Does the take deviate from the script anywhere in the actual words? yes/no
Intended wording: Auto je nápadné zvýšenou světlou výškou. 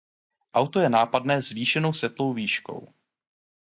no